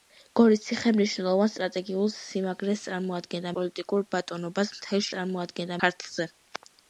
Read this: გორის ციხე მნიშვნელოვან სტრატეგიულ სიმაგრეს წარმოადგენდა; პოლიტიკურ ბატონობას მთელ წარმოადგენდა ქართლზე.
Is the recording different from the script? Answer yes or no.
no